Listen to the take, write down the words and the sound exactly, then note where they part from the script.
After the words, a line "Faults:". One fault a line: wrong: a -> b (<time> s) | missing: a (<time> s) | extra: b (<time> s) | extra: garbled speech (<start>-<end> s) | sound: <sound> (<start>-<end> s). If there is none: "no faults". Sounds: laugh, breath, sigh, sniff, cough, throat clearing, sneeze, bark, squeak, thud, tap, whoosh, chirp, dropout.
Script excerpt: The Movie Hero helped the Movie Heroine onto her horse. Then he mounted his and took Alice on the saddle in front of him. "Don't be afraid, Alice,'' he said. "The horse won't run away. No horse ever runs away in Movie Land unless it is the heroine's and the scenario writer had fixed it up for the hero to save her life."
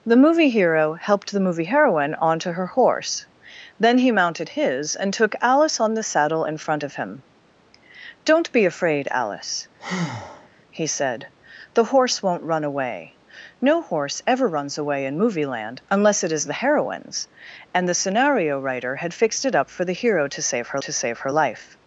The Movie Hero helped the Movie Heroine onto her horse. Then he mounted his and took Alice on the saddle in front of him. "Don't be afraid, Alice,'' he said. "The horse won't run away. No horse ever runs away in Movie Land unless it is the heroine's and the scenario writer had fixed it up for the hero to save her to save her life."
Faults:
sound: breath (9.8-10.5 s)
extra: to save her (20.8 s)